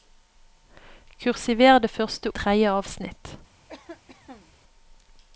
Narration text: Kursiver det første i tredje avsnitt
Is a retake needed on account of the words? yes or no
no